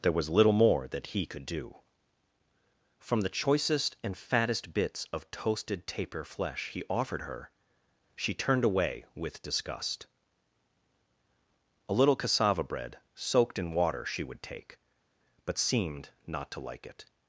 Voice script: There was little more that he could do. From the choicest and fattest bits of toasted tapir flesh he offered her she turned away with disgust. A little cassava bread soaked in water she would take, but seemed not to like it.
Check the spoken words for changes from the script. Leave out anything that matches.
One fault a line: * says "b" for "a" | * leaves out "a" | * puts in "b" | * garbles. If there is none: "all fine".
all fine